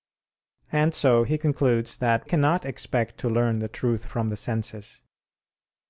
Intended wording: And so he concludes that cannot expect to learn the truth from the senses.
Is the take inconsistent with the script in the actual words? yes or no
no